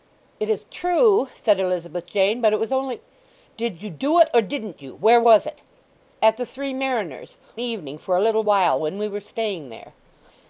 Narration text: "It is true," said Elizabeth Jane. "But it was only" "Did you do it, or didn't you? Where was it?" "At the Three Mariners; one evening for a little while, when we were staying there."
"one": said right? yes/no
no